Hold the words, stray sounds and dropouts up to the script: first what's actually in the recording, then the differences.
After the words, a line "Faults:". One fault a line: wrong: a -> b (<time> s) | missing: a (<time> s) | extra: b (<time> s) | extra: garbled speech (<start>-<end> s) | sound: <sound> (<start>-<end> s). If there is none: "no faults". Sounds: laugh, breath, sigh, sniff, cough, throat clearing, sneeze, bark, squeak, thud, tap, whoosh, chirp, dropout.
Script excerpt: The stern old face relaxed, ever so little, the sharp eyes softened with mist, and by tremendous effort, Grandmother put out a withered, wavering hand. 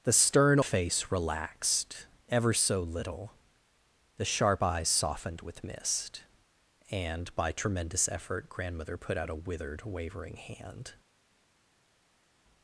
The stern face relaxed, ever so little, the sharp eyes softened with mist, and by tremendous effort, Grandmother put out a withered, wavering hand.
Faults:
missing: old (0.6 s)